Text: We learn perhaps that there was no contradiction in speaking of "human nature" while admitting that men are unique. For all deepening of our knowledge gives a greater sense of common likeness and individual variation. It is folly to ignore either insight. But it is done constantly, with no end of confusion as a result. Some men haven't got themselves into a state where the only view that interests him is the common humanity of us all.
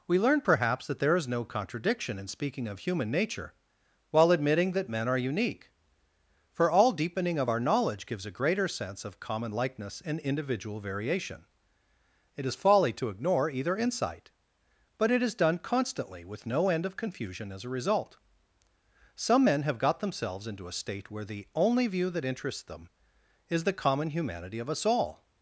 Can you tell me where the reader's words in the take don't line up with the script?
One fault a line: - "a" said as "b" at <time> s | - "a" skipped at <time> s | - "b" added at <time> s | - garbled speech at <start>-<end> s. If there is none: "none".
- "was" said as "is" at 1.1 s
- "haven't" said as "have" at 19.6 s
- "him" said as "them" at 22.6 s